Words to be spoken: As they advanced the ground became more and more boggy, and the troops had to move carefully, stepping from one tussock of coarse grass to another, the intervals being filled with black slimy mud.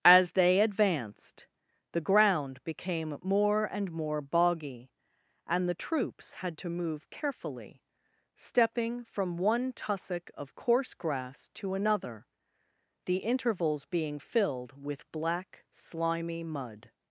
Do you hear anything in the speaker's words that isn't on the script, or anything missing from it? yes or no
no